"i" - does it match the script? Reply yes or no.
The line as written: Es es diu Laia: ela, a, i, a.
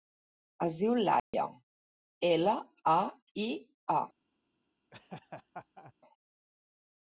yes